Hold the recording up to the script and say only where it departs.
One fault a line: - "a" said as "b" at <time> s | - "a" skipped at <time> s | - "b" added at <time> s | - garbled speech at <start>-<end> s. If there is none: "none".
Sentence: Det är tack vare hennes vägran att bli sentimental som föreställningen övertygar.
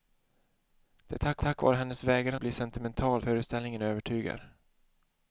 - "tack" added at 1.4 s
- "att" skipped at 2.4 s
- "som" skipped at 3.2 s